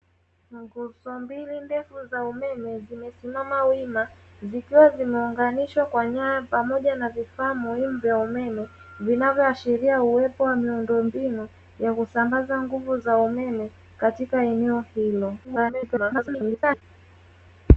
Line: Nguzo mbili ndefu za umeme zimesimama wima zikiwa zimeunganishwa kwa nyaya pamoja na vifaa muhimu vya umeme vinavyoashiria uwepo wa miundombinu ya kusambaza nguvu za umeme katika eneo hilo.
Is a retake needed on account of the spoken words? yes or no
yes